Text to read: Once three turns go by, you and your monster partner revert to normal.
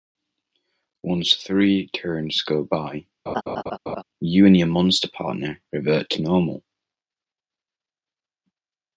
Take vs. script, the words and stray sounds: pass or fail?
fail